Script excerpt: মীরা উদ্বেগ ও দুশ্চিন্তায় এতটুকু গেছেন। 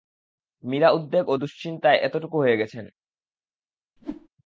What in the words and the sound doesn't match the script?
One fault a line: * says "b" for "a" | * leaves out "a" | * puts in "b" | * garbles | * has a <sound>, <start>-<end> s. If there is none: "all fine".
* puts in "হয়ে"
* has a whoosh, 4.0-4.3 s